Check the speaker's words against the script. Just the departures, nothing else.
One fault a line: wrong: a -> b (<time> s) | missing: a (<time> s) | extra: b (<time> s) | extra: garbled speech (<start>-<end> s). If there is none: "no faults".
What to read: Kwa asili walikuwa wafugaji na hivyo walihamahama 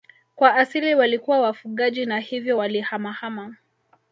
no faults